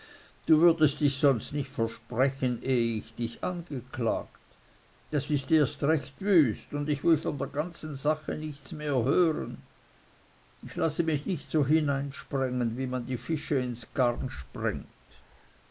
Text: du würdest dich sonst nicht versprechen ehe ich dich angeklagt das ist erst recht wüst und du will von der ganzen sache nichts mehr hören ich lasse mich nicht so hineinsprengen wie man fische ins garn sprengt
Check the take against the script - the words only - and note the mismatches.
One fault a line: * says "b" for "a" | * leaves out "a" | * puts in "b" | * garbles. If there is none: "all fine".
* says "ich" for "du"
* puts in "die"